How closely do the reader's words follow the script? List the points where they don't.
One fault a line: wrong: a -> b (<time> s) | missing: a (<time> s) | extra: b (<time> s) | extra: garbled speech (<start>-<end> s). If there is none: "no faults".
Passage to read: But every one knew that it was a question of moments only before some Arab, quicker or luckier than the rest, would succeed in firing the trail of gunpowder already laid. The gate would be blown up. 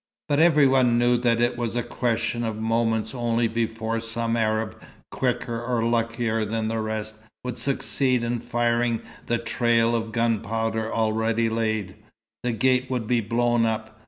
no faults